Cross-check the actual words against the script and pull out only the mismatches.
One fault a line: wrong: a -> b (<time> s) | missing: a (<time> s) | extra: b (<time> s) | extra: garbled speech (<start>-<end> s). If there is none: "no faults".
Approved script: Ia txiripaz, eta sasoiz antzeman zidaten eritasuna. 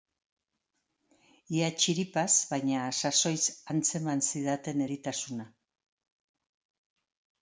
wrong: eta -> baina (2.5 s)